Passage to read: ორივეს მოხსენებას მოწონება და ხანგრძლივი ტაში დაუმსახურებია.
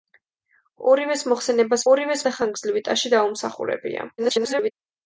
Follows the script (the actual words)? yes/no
no